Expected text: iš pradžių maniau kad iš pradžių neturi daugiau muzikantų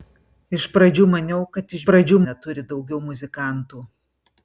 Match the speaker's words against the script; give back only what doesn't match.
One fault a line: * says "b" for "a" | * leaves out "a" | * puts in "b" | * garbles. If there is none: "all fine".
all fine